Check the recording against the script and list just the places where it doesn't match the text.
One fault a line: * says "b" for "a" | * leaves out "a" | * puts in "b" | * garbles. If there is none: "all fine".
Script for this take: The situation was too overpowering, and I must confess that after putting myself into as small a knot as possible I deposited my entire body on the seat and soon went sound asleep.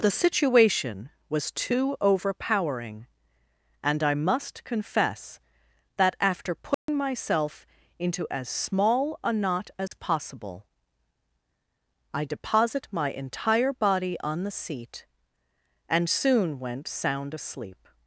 * says "deposit" for "deposited"